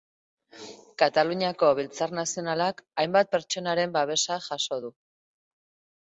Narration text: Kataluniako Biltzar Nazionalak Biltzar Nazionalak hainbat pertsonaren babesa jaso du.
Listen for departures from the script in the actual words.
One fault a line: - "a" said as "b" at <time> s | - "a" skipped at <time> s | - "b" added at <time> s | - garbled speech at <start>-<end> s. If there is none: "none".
- "Biltzar Nazionalak" skipped at 2.8 s